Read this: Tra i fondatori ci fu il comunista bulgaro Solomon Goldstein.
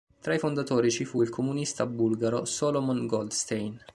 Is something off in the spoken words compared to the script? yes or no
no